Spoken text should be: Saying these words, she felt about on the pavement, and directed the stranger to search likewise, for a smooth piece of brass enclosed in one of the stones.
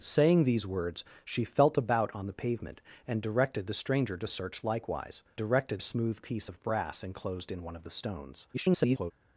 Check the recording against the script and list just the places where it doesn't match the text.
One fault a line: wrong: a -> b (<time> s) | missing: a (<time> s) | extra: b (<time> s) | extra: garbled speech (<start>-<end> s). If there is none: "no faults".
wrong: for -> directed (5.4 s)
extra: garbled speech (8.5-9.1 s)